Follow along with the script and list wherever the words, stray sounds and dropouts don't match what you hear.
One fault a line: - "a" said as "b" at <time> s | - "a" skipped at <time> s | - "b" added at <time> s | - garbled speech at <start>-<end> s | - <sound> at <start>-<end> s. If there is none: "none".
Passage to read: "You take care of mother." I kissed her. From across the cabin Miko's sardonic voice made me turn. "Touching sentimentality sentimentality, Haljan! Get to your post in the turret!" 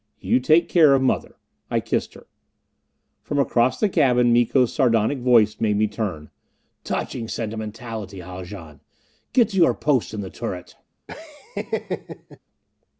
- "sentimentality" skipped at 8.2 s
- laugh at 11.1-12.4 s